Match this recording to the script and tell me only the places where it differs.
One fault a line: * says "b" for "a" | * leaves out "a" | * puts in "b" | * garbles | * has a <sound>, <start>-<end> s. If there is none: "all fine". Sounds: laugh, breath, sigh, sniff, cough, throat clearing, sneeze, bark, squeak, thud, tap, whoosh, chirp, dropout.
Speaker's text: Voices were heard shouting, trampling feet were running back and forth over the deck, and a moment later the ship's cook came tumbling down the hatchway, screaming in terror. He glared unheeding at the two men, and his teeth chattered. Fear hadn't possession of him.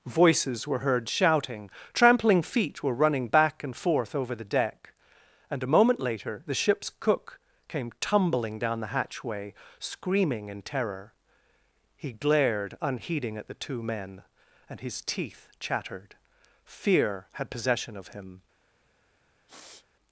* says "had" for "hadn't"
* has a sniff, 19.5-19.9 s